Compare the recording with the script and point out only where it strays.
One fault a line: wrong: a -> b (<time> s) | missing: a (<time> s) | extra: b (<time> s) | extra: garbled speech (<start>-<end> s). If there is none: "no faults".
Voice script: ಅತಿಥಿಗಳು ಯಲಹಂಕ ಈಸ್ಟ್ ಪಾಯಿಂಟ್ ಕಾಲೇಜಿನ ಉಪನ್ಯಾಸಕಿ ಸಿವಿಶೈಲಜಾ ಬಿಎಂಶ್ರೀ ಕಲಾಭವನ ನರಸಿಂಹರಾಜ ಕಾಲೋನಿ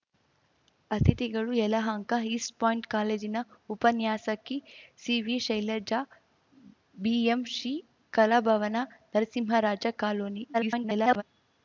extra: garbled speech (10.5-11.2 s)